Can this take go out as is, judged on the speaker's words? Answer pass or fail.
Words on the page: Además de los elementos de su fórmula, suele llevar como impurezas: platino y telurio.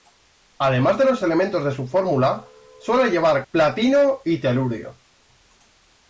fail